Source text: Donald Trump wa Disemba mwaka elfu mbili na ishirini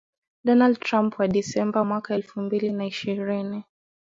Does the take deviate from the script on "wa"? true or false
false